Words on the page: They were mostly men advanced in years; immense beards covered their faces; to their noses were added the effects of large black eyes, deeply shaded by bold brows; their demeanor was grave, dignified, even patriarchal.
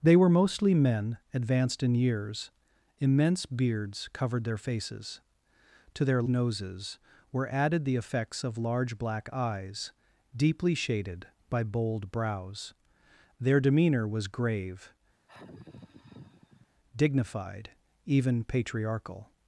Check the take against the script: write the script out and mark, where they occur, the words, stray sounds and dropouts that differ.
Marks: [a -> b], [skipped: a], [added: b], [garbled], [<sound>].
They were mostly men advanced in years; immense beards covered their faces; to their noses were added the effects of large black eyes, deeply shaded by bold brows; their demeanor was grave, [sigh] dignified, even patriarchal.